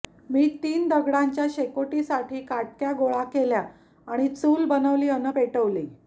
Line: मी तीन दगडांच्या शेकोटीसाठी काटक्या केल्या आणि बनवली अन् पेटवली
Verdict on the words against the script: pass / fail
fail